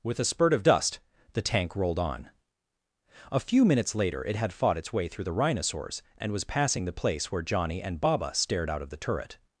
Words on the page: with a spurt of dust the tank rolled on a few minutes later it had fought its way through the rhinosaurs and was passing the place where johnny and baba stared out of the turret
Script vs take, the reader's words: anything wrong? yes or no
no